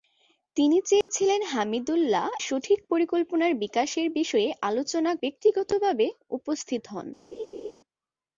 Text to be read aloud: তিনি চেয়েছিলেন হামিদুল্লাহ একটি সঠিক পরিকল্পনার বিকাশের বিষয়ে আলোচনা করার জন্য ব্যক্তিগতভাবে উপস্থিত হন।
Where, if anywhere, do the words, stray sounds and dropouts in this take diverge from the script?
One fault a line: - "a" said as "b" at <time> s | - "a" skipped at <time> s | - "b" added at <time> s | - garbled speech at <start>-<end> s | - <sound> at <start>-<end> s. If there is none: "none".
- dropout at 1.0-1.1 s
- "একটি" skipped at 2.3 s
- "করার জন্য" skipped at 5.1 s
- laugh at 7.3-7.7 s